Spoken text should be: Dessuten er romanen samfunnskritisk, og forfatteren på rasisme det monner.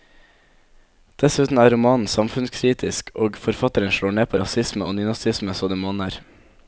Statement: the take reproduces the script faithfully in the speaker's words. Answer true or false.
false